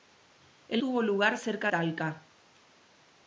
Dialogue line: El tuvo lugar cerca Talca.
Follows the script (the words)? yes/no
yes